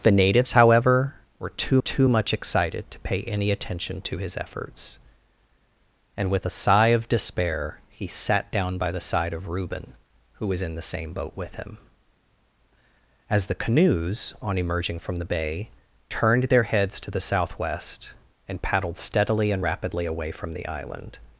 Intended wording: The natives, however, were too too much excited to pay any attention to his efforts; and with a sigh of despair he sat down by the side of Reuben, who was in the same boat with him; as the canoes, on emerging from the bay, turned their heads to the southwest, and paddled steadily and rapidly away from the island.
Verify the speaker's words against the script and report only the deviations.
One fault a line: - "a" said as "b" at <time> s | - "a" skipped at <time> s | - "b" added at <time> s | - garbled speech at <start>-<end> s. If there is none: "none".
none